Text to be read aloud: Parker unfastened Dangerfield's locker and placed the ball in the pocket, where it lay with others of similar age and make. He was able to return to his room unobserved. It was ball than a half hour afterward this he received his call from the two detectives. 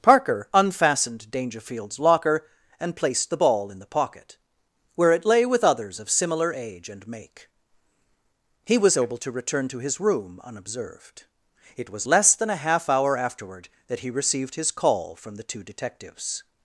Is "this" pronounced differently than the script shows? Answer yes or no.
yes